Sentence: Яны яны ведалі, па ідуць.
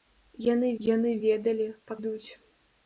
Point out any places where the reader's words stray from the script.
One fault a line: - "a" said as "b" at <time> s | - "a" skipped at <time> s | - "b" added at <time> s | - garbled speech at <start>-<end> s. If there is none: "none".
none